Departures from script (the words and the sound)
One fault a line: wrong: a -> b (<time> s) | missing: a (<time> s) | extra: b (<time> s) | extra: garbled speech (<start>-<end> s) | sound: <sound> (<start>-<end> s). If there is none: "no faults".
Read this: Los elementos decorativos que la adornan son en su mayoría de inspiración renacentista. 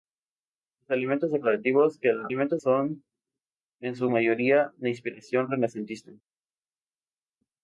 wrong: adornan -> elementos (2.3 s)